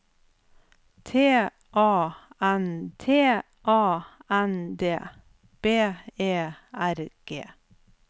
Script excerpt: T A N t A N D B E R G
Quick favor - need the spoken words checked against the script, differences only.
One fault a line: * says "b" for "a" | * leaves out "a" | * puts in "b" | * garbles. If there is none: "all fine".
all fine